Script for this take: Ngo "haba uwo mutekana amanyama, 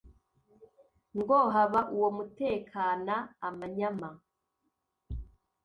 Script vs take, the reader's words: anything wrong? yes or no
no